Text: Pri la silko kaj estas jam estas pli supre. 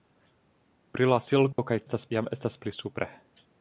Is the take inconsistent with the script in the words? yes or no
no